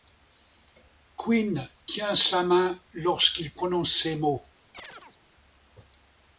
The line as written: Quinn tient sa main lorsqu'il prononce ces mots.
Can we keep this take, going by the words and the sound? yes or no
no